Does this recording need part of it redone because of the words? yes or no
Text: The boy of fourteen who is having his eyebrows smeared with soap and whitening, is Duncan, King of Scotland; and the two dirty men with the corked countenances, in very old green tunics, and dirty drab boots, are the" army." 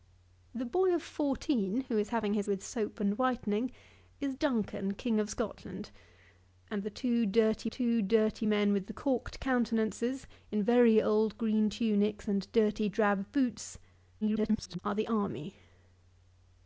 yes